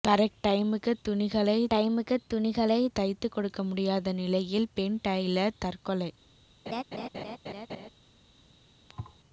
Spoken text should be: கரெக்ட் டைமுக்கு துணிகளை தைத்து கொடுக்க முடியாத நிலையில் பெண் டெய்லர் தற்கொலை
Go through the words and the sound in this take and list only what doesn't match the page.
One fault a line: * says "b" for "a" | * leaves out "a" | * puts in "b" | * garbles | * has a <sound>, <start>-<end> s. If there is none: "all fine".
* puts in "டைமுக்கு துணிகளை"
* has a laugh, 6.7-7.9 s
* has a thud, 8.9-9.2 s